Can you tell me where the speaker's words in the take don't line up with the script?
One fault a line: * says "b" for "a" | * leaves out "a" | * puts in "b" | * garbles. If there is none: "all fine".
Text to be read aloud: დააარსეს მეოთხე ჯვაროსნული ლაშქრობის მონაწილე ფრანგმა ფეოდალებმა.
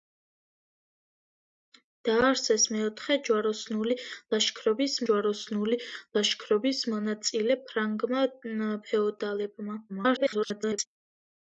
* puts in "ჯვაროსნული ლაშქრობის"
* garbles